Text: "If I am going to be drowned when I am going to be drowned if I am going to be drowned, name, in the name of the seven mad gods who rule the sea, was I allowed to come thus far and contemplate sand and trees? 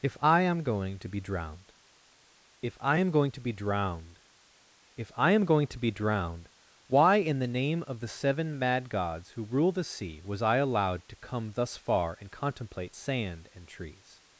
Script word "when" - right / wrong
wrong